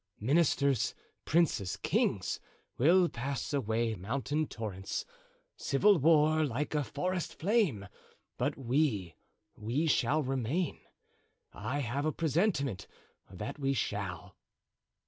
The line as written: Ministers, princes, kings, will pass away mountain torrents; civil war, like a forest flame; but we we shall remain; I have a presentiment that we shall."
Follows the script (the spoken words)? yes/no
yes